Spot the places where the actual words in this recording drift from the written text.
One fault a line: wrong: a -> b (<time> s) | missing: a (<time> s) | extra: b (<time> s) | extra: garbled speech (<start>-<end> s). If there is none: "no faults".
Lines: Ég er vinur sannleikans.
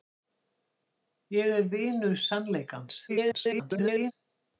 extra: garbled speech (3.1-4.1 s)